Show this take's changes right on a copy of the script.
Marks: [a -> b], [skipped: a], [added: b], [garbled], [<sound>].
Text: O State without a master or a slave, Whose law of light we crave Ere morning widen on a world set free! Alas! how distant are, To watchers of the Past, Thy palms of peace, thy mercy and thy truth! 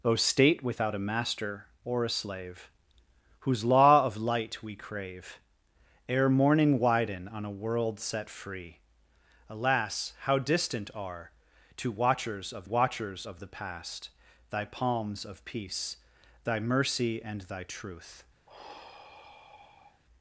O State without a master or a slave, Whose law of light we crave Ere morning widen on a world set free! Alas! how distant are, To watchers of [added: watchers of] the Past, Thy palms of peace, thy mercy and thy truth! [sigh]